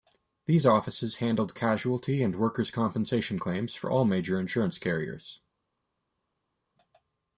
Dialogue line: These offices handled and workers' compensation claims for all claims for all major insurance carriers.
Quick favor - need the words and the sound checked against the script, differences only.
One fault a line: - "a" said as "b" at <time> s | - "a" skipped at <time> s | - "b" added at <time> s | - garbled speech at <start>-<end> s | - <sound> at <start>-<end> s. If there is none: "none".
- "casualty" added at 1.5 s
- "claims for all" skipped at 4.0 s